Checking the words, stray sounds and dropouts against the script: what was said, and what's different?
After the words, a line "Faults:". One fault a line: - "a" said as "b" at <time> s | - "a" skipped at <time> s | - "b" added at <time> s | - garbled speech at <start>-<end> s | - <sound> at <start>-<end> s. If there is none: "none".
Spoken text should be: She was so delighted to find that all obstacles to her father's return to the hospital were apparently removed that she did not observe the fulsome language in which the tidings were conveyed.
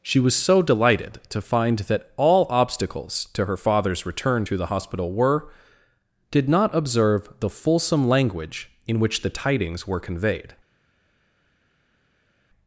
She was so delighted to find that all obstacles to her father's return to the hospital were did not observe the fulsome language in which the tidings were conveyed.
Faults:
- "apparently removed that she" skipped at 5.5 s